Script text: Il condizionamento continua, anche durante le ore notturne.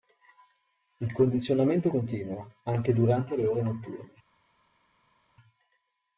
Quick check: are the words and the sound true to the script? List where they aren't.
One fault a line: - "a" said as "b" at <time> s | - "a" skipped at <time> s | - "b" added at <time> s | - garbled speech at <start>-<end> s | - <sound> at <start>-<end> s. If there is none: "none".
none